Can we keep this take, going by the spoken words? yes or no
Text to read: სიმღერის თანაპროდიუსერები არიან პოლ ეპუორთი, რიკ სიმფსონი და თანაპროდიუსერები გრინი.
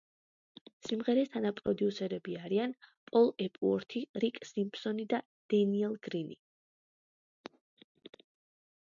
no